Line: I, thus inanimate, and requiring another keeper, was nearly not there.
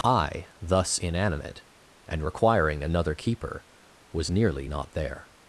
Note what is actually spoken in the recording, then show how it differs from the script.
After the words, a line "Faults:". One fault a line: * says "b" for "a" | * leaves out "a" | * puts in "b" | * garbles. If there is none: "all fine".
I, thus inanimate, and requiring another keeper, was nearly not there.
Faults:
all fine